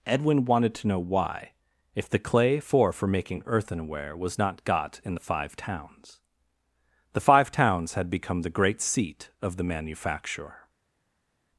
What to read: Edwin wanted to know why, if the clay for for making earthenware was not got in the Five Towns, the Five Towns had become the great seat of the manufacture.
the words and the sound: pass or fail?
pass